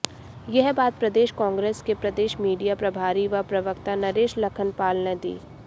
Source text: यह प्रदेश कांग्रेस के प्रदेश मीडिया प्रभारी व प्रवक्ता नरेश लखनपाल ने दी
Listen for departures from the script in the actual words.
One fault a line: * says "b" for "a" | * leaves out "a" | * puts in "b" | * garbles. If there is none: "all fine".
* puts in "बात"